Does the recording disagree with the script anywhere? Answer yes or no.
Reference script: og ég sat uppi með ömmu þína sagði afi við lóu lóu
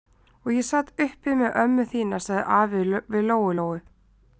no